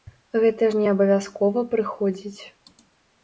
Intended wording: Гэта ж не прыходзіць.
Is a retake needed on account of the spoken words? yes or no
yes